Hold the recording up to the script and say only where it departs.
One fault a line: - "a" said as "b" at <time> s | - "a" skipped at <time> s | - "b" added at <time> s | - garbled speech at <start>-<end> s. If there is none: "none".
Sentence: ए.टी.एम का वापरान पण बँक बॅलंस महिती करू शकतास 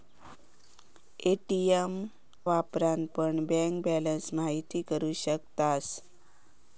- "का" skipped at 1.9 s